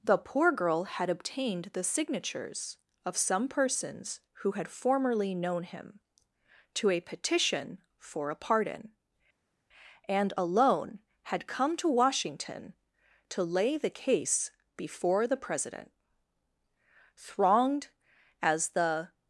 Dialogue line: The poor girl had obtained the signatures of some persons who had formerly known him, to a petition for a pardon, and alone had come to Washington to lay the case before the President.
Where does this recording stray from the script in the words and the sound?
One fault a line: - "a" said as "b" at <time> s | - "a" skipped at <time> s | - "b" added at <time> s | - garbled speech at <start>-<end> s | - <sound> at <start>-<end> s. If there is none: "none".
- "Thronged as the" added at 17.2 s